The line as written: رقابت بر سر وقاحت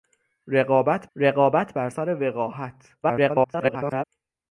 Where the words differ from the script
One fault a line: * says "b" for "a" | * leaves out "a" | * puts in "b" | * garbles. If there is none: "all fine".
* puts in "رقابت"
* garbles